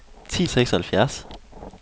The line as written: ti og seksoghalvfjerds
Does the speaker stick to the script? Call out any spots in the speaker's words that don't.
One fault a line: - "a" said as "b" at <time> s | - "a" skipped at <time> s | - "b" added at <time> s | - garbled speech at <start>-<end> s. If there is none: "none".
none